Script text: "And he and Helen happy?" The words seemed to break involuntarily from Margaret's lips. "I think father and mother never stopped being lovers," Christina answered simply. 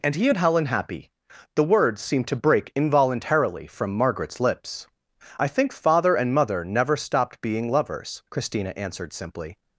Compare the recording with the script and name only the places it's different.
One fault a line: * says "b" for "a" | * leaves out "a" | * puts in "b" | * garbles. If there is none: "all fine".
all fine